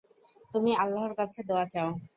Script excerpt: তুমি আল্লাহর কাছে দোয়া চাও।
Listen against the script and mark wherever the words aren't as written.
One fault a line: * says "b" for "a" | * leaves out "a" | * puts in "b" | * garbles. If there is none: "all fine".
all fine